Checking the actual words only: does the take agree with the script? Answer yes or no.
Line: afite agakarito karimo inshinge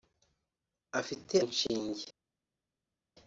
no